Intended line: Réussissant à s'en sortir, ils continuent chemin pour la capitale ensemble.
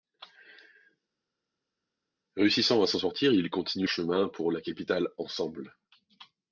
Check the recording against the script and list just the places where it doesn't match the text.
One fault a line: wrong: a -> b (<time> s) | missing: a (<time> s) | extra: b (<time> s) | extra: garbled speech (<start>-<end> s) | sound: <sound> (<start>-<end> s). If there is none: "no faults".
no faults